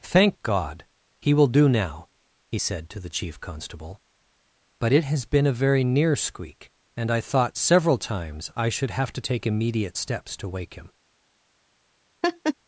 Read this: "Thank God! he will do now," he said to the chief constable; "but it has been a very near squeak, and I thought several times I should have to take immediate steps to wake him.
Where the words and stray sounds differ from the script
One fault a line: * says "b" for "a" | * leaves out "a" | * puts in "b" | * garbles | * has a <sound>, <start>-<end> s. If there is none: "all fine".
* has a laugh, 12.2-12.5 s